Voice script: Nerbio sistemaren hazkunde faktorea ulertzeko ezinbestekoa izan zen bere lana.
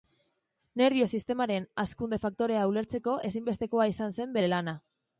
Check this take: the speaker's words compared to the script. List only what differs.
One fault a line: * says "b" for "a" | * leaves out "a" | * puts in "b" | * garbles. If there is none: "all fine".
all fine